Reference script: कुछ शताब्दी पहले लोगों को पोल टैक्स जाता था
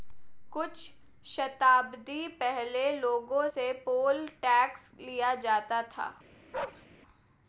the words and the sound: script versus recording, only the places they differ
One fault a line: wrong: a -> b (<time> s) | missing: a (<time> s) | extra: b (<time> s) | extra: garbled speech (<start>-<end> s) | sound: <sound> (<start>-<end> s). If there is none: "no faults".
wrong: को -> से (3.4 s)
extra: लिया (5.0 s)
sound: bark (6.5-6.9 s)